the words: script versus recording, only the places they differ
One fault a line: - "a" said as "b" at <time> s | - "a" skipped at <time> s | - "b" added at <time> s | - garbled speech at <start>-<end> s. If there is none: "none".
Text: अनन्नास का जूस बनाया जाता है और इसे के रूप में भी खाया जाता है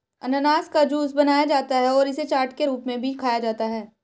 - "चाट" added at 2.2 s